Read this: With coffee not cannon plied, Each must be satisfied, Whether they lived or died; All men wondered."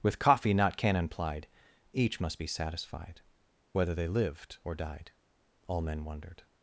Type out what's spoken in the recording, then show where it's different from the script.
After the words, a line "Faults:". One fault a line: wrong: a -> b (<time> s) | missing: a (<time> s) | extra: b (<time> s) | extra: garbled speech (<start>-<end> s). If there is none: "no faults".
With coffee not cannon plied, Each must be satisfied, Whether they lived or died; All men wondered."
Faults:
no faults